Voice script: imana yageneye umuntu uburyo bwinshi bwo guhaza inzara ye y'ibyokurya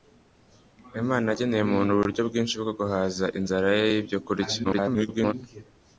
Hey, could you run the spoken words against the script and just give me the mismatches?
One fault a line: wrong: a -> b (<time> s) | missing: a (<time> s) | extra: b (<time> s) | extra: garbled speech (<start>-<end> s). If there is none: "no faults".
extra: garbled speech (4.6-5.3 s)